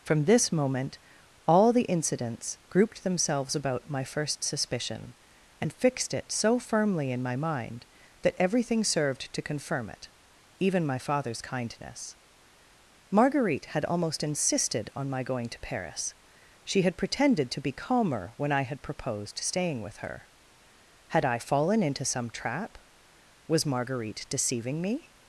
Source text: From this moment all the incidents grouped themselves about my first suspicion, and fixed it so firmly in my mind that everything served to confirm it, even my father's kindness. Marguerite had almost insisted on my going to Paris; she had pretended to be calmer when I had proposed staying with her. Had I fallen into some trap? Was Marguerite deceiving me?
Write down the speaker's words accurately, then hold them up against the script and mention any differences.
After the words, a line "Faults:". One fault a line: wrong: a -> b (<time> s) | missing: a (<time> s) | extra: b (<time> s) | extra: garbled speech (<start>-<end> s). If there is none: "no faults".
From this moment all the incidents grouped themselves about my first suspicion, and fixed it so firmly in my mind that everything served to confirm it, even my father's kindness. Marguerite had almost insisted on my going to Paris; she had pretended to be calmer when I had proposed staying with her. Had I fallen into some trap? Was Marguerite deceiving me?
Faults:
no faults